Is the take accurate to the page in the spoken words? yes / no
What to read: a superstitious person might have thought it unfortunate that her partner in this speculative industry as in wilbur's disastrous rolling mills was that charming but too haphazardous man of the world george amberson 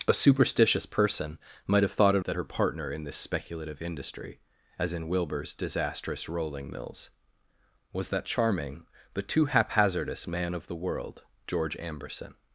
no